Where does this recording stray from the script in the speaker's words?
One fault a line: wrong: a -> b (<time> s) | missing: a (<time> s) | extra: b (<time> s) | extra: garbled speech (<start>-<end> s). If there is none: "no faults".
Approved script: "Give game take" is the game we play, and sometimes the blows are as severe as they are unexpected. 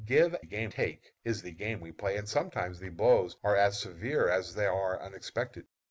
no faults